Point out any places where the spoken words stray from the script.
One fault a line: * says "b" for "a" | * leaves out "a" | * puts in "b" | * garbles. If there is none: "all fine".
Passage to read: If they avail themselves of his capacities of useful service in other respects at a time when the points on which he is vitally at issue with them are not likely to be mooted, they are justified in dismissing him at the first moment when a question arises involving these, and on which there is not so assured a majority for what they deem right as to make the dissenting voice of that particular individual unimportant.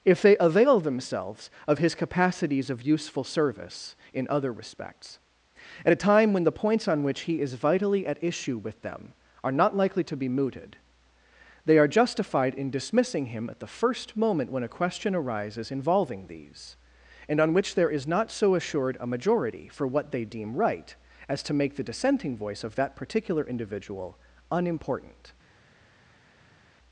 all fine